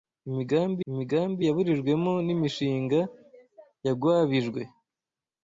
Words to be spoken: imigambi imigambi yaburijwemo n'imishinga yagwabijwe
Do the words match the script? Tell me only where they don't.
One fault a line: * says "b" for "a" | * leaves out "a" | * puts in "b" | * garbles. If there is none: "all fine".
all fine